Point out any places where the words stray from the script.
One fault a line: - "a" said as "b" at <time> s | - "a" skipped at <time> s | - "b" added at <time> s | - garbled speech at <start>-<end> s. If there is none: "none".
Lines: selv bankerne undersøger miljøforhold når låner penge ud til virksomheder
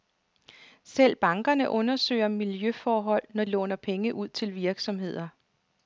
none